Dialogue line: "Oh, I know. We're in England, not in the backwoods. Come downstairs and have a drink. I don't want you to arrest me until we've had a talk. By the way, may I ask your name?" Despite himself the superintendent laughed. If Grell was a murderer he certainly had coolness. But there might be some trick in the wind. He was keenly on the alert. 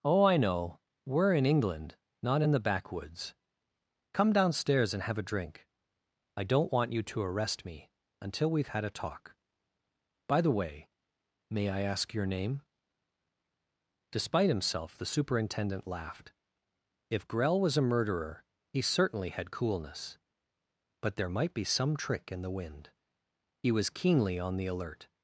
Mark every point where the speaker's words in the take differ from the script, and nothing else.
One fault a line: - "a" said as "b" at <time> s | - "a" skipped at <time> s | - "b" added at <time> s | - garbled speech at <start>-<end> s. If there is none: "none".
none